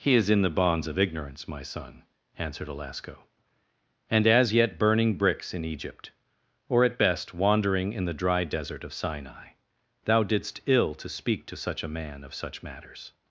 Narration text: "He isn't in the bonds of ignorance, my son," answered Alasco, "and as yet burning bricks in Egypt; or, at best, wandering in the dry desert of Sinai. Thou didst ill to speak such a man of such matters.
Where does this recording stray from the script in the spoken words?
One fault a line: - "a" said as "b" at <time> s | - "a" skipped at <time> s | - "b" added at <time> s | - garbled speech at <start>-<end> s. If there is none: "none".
- "isn't" said as "is" at 0.1 s
- "to" added at 11.4 s